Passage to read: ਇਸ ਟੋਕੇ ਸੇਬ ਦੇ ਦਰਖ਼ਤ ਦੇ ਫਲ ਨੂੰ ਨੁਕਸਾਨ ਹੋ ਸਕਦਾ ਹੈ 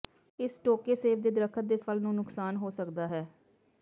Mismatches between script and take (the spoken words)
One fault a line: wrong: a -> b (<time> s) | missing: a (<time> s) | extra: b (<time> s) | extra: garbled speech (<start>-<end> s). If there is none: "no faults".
no faults